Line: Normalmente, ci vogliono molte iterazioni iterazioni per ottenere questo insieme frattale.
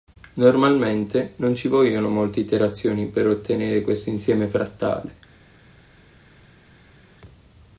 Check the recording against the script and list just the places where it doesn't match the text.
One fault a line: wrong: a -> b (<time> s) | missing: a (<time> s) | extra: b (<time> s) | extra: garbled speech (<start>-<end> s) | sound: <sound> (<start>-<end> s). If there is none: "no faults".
extra: non (1.4 s)
missing: iterazioni (3.0 s)